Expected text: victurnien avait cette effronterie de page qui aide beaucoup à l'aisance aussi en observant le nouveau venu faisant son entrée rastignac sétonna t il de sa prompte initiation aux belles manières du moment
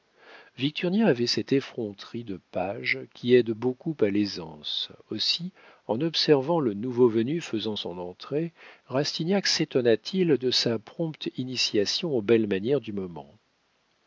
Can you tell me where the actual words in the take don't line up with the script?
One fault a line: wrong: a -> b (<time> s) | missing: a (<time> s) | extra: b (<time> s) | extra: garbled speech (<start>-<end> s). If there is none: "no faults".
no faults